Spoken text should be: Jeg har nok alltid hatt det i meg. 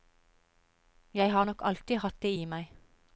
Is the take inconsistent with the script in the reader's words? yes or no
no